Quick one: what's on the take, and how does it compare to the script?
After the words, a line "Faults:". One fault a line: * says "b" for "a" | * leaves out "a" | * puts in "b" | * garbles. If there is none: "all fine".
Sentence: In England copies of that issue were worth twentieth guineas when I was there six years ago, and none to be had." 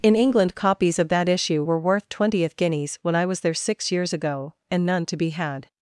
In England copies of that issue were worth twentieth guineas when I was there six years ago, and none to be had."
Faults:
all fine